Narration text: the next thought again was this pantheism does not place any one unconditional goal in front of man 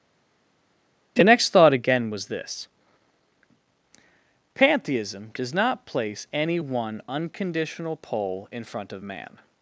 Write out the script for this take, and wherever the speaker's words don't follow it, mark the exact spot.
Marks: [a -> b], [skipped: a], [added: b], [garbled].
the next thought again was this pantheism does not place any one unconditional [goal -> pole] in front of man